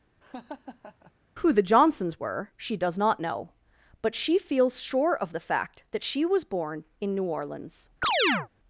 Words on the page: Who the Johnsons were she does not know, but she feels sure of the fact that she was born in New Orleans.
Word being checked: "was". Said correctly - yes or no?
yes